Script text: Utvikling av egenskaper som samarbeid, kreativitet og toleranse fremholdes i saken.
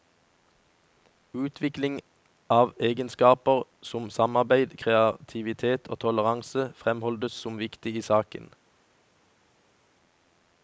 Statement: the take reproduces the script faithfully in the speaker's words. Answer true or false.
false